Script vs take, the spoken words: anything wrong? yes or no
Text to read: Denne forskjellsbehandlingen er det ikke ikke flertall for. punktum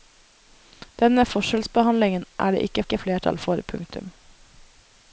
no